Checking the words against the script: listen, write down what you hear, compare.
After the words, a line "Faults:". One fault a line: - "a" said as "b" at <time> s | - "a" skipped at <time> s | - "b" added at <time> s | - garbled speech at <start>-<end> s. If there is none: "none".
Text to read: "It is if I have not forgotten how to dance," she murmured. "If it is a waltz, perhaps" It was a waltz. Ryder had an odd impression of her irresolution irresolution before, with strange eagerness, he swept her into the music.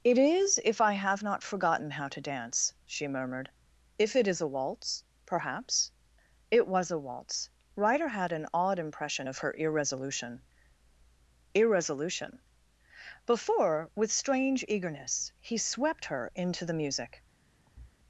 "It is if I have not forgotten how to dance," she murmured. "If it is a waltz, perhaps" It was a waltz. Ryder had an odd impression of her irresolution irresolution before, with strange eagerness, he swept her into the music.
Faults:
none